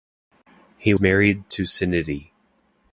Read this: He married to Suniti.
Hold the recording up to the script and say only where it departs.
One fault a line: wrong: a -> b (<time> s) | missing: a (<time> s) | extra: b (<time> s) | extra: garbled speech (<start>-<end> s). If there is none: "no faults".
no faults